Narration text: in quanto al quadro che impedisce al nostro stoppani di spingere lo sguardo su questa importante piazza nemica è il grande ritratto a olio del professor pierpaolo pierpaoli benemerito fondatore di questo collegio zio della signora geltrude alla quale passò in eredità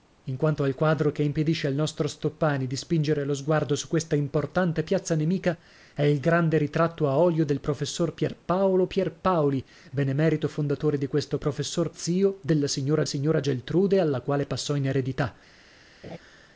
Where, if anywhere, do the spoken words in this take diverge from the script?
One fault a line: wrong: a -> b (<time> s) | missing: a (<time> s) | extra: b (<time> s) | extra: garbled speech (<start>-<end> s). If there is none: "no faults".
wrong: collegio -> professor (11.4 s)
extra: signora (13.0 s)